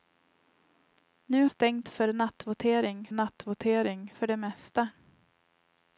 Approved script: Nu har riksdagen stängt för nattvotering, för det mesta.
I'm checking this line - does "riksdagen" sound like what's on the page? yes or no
no